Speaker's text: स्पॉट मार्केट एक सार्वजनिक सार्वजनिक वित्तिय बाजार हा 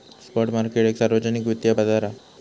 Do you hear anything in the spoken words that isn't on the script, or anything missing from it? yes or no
yes